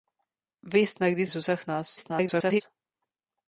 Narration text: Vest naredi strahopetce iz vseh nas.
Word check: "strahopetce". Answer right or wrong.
wrong